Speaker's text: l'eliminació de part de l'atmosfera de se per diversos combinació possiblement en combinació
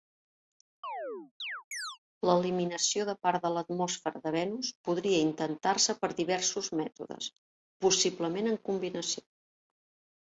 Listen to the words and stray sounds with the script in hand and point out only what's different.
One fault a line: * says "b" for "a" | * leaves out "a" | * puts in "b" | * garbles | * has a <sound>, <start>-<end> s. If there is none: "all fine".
* has a chirp, 0.8-2.0 s
* puts in "venus podria intentar"
* says "mètodes" for "combinació"